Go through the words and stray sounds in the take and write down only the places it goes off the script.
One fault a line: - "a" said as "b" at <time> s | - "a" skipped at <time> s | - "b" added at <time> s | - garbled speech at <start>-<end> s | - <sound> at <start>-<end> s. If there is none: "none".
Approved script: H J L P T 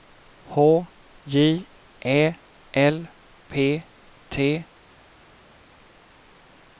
- "Ä" added at 2.0 s